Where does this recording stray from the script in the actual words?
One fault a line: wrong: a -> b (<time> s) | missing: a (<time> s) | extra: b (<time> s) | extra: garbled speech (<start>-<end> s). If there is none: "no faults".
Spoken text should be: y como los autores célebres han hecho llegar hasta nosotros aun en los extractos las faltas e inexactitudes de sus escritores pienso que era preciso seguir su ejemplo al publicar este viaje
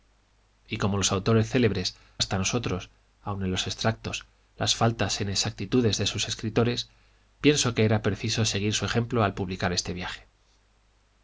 missing: han hecho llegar (1.9 s)